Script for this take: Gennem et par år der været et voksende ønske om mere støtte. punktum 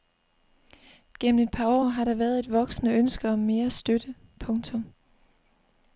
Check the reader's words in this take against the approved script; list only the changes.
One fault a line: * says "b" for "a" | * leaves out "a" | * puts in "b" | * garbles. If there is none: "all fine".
* puts in "har"